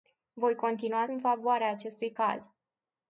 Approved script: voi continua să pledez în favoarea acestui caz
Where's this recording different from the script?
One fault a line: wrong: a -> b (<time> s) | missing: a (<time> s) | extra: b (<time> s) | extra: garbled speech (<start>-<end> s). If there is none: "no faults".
missing: să pledez (1.1 s)